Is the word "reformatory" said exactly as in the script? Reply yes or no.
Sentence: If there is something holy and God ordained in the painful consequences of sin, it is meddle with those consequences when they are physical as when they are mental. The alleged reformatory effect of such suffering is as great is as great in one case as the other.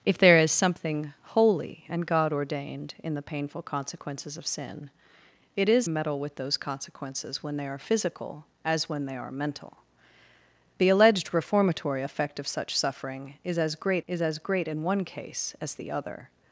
yes